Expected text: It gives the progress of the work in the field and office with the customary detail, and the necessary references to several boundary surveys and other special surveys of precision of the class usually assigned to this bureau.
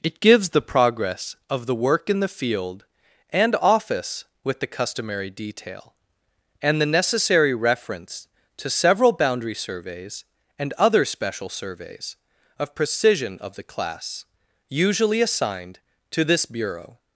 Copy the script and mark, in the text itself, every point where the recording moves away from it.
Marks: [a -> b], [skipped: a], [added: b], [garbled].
It gives the progress of the work in the field and office with the customary detail, and the necessary [references -> reference] to several boundary surveys and other special surveys of precision of the class usually assigned to this bureau.